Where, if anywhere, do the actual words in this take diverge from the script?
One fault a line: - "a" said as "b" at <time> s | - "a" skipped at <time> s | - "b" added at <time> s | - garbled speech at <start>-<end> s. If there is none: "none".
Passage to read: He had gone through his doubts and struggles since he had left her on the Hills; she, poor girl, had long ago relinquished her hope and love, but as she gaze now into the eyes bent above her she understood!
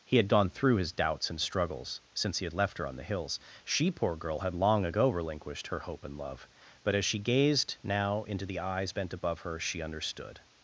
- "gaze" said as "gazed" at 7.2 s